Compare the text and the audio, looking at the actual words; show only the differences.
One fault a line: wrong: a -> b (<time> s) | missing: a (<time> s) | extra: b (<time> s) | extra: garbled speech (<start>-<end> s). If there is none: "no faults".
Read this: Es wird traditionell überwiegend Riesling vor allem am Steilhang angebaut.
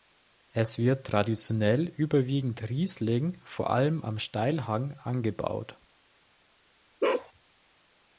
no faults